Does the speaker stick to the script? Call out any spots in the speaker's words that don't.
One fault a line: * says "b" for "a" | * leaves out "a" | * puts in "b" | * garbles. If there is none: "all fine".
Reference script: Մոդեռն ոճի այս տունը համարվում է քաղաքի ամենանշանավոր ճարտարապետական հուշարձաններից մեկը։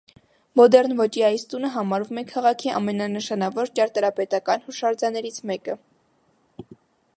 all fine